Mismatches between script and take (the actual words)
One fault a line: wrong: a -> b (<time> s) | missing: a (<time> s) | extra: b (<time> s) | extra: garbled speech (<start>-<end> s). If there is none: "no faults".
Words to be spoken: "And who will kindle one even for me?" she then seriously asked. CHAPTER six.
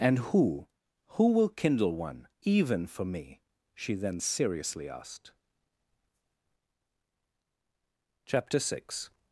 extra: who (1.1 s)